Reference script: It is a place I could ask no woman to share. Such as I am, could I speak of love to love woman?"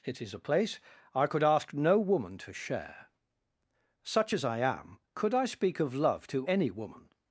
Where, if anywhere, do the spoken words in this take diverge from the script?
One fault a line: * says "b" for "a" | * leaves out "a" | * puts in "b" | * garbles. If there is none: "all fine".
* says "any" for "love"